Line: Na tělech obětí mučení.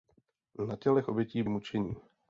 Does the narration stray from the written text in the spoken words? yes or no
no